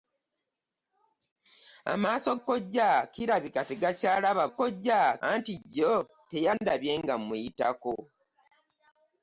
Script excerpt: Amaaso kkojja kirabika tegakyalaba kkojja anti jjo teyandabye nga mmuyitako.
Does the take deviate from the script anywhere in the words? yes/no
no